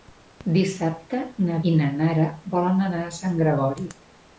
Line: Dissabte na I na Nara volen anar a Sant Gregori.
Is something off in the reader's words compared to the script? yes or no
no